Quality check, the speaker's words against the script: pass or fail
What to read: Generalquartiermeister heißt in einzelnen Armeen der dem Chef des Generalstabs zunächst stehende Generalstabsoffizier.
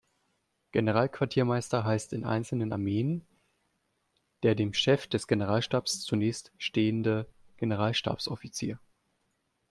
pass